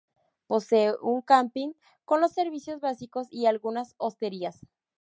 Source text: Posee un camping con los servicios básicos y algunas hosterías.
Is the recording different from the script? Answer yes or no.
no